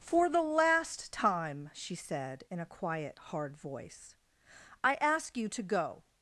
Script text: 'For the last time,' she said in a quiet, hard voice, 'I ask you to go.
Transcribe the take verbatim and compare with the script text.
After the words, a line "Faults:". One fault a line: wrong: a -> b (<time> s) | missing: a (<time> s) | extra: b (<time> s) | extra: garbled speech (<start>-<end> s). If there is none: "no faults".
'For the last time,' she said in a quiet, hard voice, 'I ask you to go.
Faults:
no faults